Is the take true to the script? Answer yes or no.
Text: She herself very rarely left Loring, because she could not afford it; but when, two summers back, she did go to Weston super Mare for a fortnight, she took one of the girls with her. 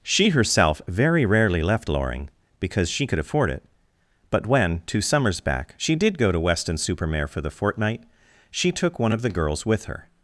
no